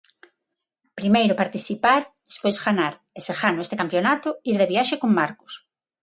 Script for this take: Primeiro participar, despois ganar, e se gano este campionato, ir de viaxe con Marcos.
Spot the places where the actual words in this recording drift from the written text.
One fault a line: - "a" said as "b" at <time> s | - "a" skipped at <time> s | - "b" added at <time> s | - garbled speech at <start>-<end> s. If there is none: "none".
none